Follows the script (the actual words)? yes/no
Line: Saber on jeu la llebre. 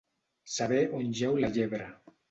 yes